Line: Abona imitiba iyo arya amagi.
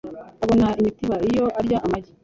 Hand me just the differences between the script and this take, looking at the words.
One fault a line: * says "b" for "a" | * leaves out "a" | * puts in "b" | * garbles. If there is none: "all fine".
all fine